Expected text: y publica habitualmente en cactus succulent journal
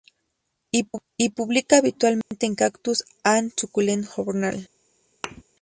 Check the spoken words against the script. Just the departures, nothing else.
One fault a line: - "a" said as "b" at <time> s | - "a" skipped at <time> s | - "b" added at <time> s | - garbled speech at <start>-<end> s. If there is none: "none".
- "and" added at 3.2 s